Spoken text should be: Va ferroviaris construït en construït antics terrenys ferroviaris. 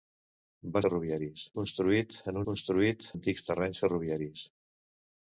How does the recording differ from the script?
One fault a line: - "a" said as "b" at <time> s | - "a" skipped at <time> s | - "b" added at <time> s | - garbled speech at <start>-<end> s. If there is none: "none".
none